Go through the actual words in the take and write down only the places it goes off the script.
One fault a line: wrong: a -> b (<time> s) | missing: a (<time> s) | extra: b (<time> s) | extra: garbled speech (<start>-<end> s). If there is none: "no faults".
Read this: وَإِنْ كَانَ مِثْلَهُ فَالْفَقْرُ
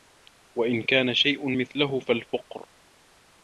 extra: شَيْءٌ (1.1 s)